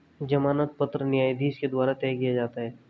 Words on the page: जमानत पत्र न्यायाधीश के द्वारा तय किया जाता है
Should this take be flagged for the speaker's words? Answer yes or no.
no